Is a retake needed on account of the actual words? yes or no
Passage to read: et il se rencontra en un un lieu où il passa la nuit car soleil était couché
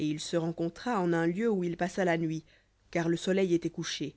yes